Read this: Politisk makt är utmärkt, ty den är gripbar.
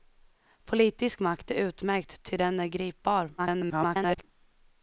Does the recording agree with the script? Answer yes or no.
no